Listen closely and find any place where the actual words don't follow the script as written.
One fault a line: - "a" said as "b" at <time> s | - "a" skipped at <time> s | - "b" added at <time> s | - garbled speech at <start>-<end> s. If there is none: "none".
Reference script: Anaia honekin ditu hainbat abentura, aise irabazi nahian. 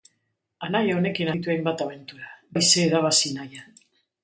none